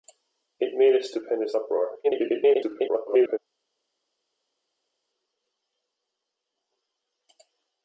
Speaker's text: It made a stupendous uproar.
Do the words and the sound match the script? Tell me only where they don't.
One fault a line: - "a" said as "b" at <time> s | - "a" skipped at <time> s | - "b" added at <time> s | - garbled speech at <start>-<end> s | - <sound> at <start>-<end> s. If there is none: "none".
- garbled speech at 2.0-3.4 s